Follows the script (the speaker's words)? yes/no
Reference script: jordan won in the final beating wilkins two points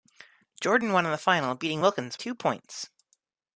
yes